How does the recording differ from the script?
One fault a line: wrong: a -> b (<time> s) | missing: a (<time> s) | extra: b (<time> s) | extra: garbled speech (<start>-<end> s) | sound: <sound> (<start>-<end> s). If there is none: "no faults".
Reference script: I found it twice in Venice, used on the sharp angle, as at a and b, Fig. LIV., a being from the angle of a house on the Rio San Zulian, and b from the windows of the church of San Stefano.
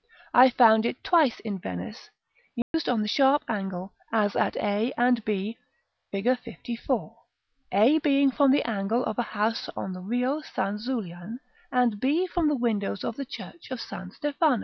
sound: dropout (2.6-2.7 s)